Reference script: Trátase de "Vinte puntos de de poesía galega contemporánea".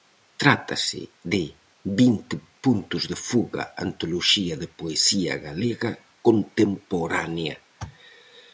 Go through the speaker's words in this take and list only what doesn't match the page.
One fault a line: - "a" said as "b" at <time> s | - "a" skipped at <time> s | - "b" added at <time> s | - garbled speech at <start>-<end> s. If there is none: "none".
- "fuga antoloxía" added at 3.3 s